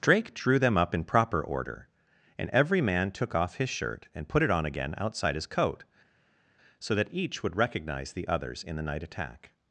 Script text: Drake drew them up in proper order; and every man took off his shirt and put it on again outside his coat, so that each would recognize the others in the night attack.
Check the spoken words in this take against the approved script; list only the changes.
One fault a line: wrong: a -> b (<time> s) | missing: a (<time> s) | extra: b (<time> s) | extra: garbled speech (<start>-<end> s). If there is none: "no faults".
no faults